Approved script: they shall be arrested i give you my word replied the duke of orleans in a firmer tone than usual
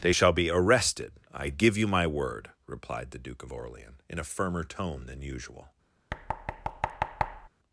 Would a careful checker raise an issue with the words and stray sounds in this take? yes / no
yes